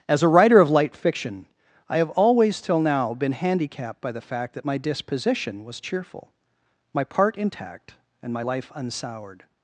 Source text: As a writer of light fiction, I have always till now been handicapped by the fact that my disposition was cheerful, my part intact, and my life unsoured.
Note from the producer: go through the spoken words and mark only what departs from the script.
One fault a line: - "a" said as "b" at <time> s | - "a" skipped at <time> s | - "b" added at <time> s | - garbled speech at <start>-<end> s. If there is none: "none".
none